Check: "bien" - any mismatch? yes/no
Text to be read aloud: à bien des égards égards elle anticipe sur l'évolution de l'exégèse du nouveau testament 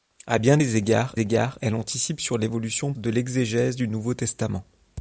no